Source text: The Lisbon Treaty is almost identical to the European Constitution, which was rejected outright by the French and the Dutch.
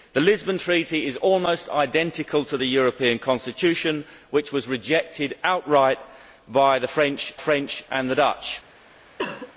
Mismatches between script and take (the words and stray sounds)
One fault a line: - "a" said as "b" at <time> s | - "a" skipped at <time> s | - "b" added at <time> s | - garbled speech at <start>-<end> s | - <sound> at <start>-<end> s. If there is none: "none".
- "French" added at 7.4 s
- cough at 9.2-9.5 s